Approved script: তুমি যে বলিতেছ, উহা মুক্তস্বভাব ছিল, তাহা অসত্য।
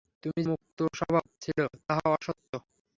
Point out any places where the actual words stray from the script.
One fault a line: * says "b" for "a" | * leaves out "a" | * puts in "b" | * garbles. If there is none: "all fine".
* leaves out "যে বলিতেছ উহা"